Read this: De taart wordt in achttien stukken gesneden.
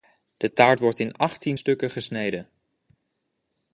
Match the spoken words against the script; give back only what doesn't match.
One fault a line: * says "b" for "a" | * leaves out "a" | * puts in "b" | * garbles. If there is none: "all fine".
all fine